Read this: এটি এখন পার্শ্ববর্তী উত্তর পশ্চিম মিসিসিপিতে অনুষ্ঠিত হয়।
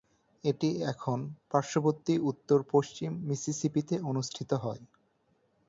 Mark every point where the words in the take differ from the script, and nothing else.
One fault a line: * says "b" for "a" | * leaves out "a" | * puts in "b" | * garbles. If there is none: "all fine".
all fine